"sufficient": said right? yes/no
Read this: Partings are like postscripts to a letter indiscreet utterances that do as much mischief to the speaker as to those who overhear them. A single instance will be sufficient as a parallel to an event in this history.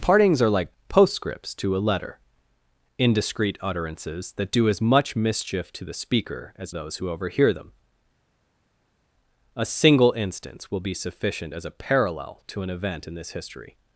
yes